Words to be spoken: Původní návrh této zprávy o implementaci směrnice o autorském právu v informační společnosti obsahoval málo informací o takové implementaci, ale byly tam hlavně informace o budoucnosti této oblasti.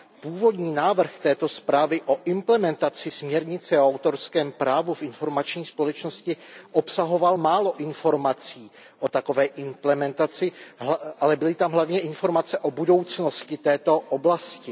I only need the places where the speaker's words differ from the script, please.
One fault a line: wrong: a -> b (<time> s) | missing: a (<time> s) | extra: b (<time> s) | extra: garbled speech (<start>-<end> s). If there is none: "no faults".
no faults